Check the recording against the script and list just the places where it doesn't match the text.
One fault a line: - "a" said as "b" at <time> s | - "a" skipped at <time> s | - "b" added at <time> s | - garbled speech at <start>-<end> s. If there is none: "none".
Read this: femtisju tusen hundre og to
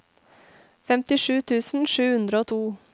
- "sju" added at 1.9 s